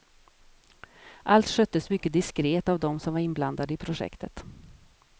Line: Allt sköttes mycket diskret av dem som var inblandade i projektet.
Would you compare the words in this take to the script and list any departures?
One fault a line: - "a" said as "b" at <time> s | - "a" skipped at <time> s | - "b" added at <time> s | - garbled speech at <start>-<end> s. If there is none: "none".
none